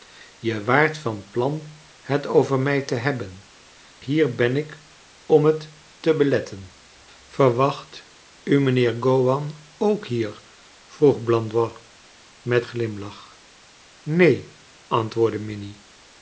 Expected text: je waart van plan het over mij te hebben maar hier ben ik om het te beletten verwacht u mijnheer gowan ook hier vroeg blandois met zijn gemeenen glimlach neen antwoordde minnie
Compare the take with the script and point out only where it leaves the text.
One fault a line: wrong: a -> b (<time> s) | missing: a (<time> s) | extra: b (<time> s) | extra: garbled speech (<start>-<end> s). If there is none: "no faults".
missing: maar (3.4 s)
missing: zijn gemeenen (12.7 s)